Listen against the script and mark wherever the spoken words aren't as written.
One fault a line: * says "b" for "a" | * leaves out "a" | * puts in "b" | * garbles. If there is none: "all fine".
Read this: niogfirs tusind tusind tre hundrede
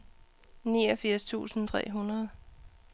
* leaves out "tusind"